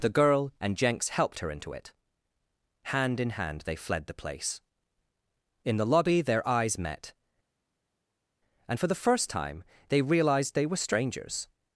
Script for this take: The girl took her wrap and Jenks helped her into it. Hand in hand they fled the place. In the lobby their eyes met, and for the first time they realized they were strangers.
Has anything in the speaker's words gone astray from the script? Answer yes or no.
yes